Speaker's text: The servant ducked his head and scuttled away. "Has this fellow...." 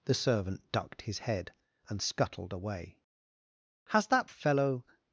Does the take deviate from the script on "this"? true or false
true